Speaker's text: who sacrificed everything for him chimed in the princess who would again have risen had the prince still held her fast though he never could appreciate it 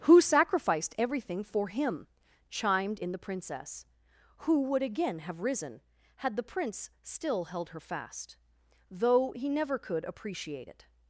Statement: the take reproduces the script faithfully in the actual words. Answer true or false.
true